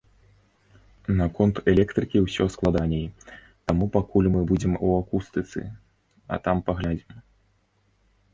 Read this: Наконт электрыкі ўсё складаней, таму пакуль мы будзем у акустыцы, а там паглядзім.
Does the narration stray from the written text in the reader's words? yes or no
no